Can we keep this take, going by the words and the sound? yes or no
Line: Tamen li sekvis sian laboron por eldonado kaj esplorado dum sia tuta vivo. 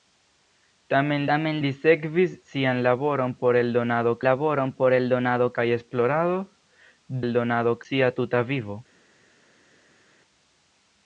no